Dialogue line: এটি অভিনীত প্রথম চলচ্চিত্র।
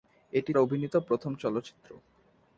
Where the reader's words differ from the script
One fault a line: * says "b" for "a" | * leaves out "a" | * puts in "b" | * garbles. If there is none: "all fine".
all fine